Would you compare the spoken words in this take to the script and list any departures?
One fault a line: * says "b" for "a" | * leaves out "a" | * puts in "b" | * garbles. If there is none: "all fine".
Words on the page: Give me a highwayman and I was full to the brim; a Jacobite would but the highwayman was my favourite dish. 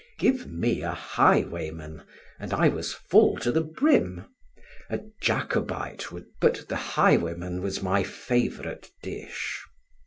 all fine